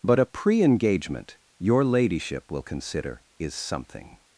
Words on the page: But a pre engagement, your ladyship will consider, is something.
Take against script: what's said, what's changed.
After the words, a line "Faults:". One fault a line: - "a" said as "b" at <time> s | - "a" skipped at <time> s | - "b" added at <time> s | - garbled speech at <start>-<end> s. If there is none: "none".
But a pre engagement, your ladyship will consider, is something.
Faults:
none